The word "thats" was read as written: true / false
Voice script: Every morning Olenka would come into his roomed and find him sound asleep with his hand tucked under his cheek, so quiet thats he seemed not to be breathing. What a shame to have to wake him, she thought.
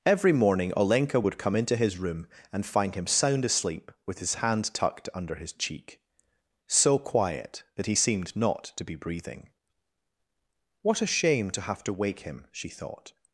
false